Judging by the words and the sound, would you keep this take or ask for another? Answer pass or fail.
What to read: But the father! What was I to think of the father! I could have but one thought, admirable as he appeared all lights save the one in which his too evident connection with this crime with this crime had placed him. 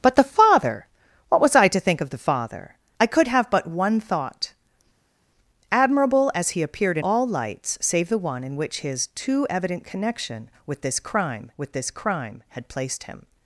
pass